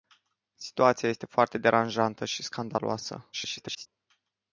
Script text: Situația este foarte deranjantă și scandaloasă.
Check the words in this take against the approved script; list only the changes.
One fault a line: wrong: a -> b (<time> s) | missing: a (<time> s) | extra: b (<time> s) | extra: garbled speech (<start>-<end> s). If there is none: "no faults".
extra: garbled speech (3.3-3.9 s)